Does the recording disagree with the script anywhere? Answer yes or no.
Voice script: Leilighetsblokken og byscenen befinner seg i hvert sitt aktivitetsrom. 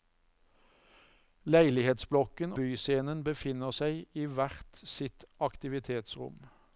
yes